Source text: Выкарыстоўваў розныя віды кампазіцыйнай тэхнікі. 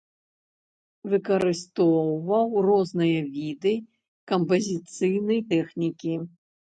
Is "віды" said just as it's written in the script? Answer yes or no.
yes